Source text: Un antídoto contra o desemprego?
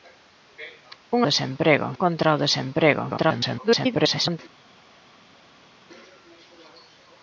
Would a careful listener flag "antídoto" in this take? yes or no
yes